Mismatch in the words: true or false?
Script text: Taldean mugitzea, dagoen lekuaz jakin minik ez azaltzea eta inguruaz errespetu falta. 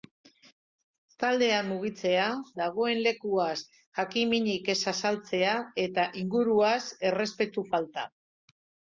false